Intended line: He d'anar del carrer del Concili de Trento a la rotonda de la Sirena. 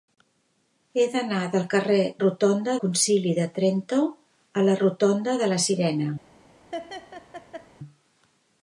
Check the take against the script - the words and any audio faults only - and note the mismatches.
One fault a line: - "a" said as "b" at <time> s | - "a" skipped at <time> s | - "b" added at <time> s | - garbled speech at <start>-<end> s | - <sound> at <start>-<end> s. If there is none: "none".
- "del" said as "rotonda" at 2.2 s
- laugh at 6.7-7.7 s